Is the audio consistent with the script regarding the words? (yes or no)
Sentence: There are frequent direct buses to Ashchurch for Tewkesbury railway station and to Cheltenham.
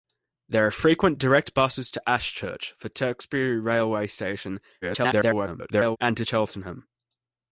no